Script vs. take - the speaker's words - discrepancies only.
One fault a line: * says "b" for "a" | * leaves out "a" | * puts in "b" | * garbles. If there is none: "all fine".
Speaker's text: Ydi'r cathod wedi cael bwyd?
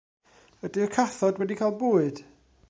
all fine